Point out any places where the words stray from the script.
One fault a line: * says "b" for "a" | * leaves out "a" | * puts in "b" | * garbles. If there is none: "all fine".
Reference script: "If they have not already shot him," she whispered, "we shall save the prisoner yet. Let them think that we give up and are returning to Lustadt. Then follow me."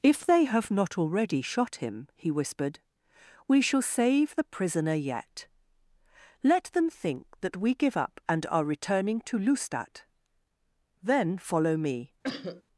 * says "he" for "she"